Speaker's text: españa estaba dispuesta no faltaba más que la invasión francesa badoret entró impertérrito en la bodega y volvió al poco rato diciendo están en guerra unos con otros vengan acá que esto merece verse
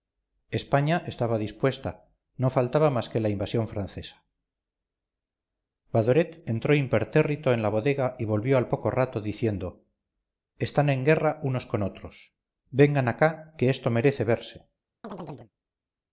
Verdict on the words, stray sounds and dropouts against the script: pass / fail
fail